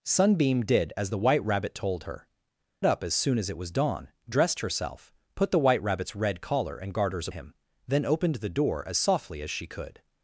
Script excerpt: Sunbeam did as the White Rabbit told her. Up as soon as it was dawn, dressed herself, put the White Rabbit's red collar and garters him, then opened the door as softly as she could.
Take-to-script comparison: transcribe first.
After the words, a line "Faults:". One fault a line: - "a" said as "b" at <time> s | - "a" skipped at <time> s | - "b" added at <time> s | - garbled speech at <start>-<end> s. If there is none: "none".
Sunbeam did as the White Rabbit told her. Up as soon as it was dawn, dressed herself, put the White Rabbit's red collar and garters him, then opened the door as softly as she could.
Faults:
none